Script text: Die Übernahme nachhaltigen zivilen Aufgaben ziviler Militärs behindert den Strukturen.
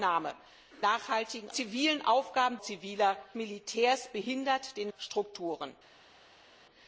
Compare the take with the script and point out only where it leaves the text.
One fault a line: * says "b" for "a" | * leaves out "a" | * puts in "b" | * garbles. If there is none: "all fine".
all fine